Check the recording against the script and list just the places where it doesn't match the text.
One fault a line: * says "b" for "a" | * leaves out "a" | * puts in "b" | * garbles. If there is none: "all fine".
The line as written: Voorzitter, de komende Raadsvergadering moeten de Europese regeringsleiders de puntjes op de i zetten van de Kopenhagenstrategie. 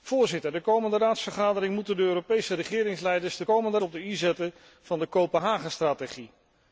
* says "komende" for "puntjes"